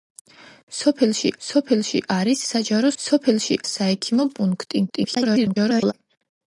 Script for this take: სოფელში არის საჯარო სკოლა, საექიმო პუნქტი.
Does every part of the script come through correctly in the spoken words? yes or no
no